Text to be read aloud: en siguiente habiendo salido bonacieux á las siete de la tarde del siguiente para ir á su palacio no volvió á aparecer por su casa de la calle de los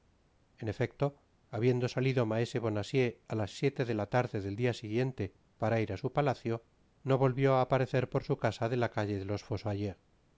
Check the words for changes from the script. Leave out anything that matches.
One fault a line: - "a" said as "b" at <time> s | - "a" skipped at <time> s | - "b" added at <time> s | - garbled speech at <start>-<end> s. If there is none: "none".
- "siguiente" said as "efecto" at 0.7 s
- "maese" added at 2.3 s
- "dia" added at 4.6 s